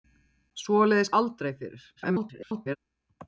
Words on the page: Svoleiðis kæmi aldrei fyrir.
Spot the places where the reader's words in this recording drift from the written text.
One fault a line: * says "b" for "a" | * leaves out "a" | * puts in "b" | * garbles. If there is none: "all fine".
* leaves out "kæmi"
* garbles